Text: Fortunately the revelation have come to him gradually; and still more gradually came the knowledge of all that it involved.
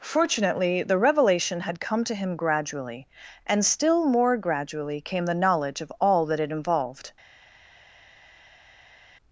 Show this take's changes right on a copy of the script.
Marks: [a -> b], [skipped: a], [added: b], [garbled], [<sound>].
Fortunately the revelation [have -> had] come to him gradually; and still more gradually came the knowledge of all that it involved.